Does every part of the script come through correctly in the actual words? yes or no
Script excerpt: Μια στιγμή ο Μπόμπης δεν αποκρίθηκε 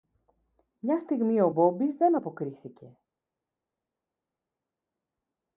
yes